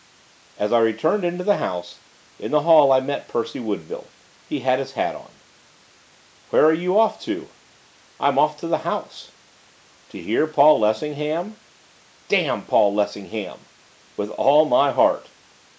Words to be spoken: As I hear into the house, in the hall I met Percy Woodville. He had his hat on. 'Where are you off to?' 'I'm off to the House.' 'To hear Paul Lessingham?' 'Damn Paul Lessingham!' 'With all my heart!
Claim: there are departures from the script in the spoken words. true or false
true